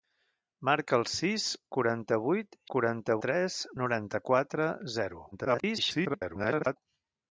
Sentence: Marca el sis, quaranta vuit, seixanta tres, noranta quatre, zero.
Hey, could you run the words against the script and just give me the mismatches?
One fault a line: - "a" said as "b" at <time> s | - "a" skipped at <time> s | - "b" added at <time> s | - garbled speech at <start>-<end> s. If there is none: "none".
- "seixanta" said as "quaranta" at 2.8 s
- garbled speech at 5.3-6.8 s